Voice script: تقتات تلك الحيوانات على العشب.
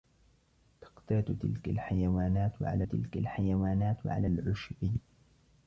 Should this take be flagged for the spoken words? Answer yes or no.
yes